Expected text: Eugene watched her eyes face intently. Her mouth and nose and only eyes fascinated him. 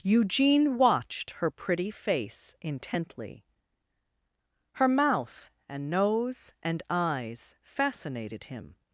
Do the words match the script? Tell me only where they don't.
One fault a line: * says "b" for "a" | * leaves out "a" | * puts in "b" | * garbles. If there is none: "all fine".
* says "pretty" for "eyes"
* leaves out "only"